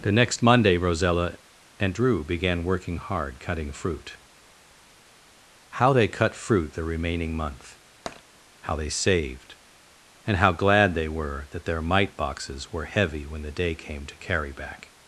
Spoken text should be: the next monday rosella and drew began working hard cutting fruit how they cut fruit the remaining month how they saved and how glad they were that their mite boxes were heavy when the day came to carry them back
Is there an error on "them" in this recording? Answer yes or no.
yes